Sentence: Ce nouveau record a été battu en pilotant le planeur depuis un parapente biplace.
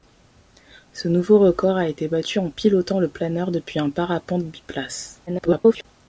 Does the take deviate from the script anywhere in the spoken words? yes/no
yes